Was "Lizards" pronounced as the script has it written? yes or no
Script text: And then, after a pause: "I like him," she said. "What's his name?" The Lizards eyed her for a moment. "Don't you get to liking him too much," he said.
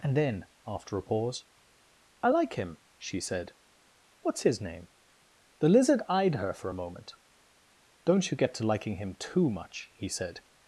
no